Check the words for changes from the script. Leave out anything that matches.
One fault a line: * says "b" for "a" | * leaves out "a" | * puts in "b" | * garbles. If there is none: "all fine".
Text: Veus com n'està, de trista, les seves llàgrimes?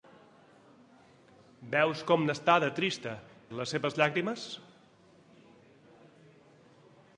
all fine